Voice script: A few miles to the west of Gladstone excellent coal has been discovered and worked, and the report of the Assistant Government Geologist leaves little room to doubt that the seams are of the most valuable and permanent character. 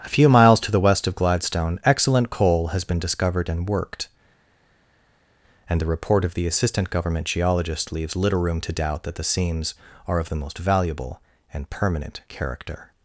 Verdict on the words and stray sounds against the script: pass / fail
pass